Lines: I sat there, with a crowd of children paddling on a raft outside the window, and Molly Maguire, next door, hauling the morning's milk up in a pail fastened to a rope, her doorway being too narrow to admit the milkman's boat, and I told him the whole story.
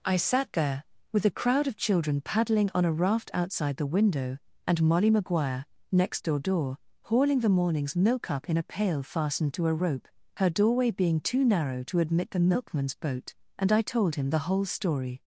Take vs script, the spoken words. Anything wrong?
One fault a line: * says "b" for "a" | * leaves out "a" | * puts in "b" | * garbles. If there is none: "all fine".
* puts in "door"